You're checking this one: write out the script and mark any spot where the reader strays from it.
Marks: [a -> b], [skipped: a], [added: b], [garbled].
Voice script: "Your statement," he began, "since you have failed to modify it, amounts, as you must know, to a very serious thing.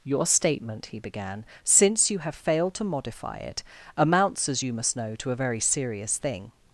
"Your statement," he began, "since you have failed to modify it, amounts, as you must know, to a very serious thing.